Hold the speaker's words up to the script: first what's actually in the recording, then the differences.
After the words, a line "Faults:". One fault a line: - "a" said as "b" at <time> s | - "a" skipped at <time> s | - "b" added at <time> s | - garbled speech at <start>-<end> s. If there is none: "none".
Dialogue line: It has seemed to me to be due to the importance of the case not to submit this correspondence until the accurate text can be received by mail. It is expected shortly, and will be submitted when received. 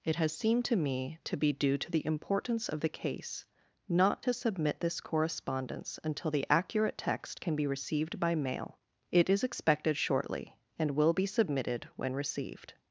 It has seemed to me to be due to the importance of the case not to submit this correspondence until the accurate text can be received by mail. It is expected shortly, and will be submitted when received.
Faults:
none